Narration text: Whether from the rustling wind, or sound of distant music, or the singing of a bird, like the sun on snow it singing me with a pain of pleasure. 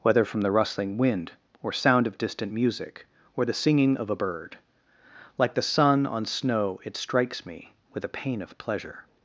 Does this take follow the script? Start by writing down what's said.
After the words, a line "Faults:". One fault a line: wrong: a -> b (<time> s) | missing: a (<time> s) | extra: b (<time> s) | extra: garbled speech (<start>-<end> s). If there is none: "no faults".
Whether from the rustling wind, or sound of distant music, or the singing of a bird, like the sun on snow it strikes me with a pain of pleasure.
Faults:
wrong: singing -> strikes (7.0 s)